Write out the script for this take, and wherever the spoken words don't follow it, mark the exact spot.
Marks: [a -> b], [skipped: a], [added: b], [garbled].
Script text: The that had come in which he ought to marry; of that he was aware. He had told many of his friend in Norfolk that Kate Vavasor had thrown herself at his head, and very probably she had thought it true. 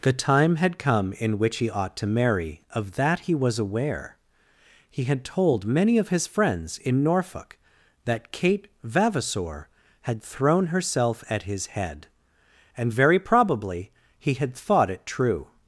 The [that -> time] had come in which he ought to marry; of that he was aware. He had told many of his [friend -> friends] in Norfolk that Kate Vavasor had thrown herself at his head, and very probably [she -> he] had thought it true.